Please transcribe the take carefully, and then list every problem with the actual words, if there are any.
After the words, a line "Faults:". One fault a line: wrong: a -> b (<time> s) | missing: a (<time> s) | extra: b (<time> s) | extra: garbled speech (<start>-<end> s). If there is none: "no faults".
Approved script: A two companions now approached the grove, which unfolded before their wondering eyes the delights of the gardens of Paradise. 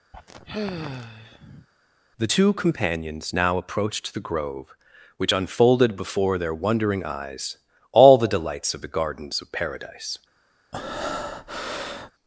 The two companions now approached the grove, which unfolded before their wondering eyes all the delights of the gardens of Paradise.
Faults:
wrong: A -> The (2.2 s)
extra: all (7.9 s)